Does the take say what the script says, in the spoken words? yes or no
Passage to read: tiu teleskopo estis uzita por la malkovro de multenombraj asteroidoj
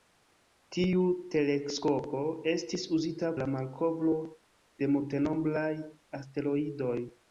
no